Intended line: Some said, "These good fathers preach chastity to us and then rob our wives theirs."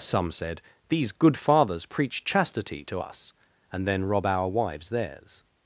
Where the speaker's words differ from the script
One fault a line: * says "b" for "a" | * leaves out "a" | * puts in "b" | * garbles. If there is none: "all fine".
all fine